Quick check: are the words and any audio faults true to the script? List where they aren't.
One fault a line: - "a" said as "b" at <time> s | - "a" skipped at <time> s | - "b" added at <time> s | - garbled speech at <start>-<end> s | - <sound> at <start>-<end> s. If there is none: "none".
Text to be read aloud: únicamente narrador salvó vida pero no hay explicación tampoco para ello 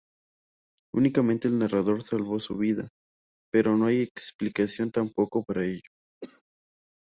- "el" added at 1.5 s
- "su" added at 2.4 s
- cough at 6.2-6.4 s